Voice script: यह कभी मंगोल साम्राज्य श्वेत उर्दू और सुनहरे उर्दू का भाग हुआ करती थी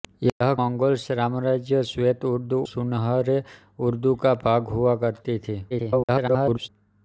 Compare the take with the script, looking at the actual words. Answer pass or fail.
fail